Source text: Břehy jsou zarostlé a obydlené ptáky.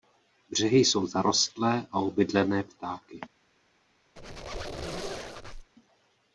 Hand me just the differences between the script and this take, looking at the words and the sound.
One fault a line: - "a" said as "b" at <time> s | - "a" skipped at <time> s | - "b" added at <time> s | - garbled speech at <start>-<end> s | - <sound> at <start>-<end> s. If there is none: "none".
- squeak at 4.2-5.7 s